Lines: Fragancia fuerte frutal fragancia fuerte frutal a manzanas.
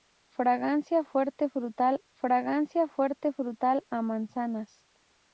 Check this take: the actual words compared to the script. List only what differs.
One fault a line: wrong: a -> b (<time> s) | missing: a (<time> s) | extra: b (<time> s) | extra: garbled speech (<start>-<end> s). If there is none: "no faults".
no faults